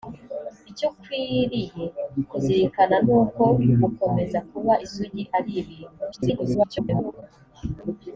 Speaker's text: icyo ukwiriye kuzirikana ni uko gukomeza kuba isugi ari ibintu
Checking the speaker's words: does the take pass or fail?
fail